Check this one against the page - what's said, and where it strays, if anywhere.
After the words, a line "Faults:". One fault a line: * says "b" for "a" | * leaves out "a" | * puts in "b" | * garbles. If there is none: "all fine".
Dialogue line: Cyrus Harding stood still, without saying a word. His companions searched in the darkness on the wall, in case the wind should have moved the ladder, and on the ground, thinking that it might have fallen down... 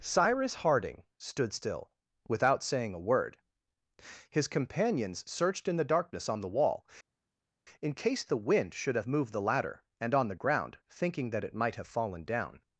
Cyrus Harding stood still, without saying a word. His companions searched in the darkness on the wall, in case the wind should have moved the ladder, and on the ground, thinking that it might have fallen down...
Faults:
all fine